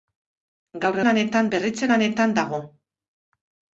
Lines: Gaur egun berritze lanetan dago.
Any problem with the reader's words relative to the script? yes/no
yes